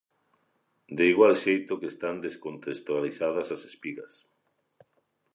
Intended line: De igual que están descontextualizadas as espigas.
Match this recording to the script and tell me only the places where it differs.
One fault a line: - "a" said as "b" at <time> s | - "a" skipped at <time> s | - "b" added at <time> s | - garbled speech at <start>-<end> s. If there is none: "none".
- "xeito" added at 1.4 s